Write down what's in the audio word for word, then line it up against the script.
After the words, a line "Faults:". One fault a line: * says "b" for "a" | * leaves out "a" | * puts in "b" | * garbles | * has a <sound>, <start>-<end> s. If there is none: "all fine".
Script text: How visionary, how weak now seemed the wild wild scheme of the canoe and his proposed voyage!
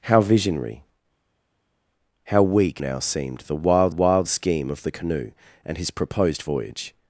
How visionary, how weak now seemed the wild wild scheme of the canoe and his proposed voyage!
Faults:
all fine